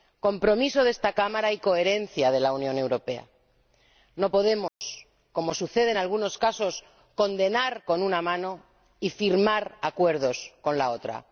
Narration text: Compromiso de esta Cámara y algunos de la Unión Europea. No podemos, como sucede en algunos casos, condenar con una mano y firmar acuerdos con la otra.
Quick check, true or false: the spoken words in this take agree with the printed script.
false